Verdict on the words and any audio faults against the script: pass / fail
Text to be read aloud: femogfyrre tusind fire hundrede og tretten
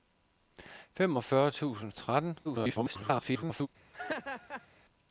fail